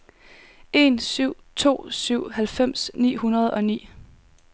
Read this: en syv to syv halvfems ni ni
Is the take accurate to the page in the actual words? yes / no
no